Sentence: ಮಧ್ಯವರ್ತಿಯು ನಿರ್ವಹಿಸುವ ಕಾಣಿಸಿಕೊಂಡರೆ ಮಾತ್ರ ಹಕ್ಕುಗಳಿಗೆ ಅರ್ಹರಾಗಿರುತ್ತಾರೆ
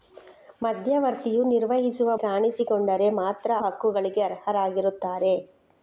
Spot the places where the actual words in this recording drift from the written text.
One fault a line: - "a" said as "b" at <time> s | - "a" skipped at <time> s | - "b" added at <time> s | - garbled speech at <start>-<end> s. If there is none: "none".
none